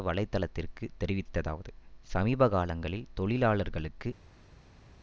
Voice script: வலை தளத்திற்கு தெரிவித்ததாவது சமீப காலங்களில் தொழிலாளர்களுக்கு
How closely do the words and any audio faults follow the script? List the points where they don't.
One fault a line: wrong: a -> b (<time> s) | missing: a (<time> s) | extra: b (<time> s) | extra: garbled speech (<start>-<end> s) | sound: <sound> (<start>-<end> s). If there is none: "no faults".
no faults